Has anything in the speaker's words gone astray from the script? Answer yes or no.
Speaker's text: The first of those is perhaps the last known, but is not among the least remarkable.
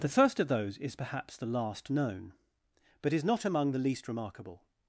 no